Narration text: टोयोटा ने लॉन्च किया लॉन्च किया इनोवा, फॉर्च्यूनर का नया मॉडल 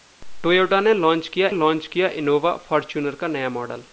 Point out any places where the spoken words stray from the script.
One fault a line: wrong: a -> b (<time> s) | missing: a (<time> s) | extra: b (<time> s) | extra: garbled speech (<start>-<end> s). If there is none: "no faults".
no faults